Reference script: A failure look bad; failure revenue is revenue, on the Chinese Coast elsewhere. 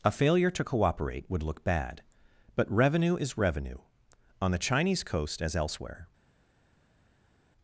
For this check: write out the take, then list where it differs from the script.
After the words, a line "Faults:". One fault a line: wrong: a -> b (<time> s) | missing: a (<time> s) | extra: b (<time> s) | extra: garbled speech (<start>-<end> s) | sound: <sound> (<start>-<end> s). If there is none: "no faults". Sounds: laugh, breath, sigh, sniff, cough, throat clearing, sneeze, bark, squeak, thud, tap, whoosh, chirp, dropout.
A failure to cooperate would look bad; but revenue is revenue, on the Chinese Coast as elsewhere.
Faults:
extra: to cooperate would (0.5 s)
wrong: failure -> but (2.5 s)
extra: as (5.4 s)